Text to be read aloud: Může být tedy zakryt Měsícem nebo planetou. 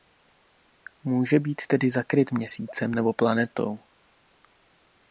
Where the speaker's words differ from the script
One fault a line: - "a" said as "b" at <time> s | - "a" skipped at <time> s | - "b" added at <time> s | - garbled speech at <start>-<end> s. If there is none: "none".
none